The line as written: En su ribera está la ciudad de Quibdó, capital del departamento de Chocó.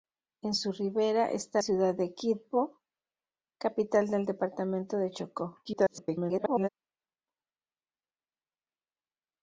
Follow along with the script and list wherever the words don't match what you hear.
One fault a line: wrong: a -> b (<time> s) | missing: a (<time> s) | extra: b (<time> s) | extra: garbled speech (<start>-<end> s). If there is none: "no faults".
missing: la (1.6 s)
extra: garbled speech (5.6-6.7 s)